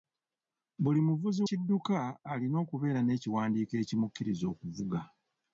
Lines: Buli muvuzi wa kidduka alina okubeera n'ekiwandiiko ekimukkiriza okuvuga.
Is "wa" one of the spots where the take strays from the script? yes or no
yes